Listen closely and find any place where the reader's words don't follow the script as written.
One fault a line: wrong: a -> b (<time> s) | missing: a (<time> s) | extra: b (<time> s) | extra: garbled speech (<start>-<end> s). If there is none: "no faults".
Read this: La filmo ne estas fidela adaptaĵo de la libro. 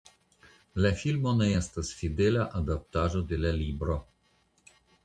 no faults